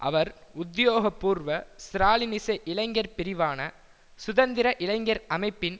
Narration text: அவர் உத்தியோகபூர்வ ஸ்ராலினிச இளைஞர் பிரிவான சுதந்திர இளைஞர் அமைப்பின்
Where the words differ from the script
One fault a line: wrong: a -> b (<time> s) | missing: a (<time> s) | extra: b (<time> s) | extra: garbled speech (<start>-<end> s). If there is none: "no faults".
no faults